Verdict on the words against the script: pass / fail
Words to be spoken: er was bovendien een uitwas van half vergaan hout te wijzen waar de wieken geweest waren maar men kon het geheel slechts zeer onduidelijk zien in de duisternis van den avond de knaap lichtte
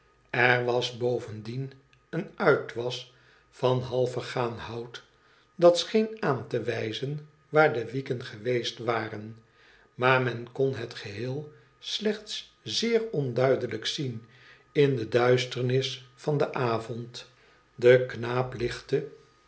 fail